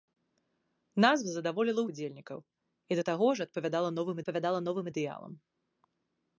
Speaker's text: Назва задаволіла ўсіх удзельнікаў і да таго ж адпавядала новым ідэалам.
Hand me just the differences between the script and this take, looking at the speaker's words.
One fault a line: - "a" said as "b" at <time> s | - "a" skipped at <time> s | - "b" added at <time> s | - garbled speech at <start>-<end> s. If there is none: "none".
- "ўсіх" skipped at 1.8 s
- "адпавядала новым" added at 4.2 s